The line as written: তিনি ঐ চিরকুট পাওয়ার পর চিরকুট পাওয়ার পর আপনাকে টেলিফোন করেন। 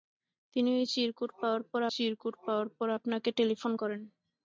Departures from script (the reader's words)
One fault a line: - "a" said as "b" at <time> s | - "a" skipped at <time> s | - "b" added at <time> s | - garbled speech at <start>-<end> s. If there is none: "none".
none